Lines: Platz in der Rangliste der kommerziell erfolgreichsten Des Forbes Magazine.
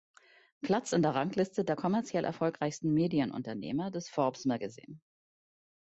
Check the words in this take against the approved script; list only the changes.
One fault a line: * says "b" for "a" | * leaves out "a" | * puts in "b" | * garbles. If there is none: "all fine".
* puts in "Medienunternehmer"